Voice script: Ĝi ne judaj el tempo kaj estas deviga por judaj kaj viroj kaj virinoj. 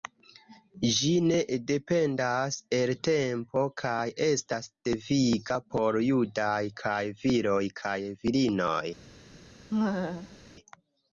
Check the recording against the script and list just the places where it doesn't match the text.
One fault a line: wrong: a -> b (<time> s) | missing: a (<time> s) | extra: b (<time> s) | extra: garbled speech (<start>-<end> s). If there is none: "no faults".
wrong: judaj -> dependas (1.7 s)